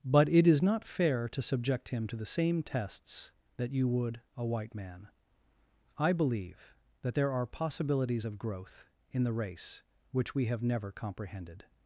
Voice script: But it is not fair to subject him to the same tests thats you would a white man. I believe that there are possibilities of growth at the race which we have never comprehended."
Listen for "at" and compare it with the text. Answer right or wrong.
wrong